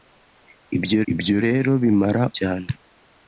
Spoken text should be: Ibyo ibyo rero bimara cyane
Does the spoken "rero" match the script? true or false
true